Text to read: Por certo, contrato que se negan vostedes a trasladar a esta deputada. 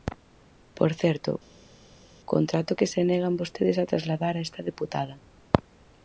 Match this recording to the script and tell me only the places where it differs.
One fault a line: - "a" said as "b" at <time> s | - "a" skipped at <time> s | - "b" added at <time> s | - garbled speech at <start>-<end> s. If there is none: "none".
none